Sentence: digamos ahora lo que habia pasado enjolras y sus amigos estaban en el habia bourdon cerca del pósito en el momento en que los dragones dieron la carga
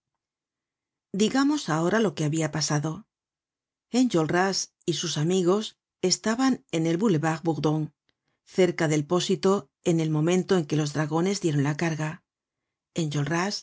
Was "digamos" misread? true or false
false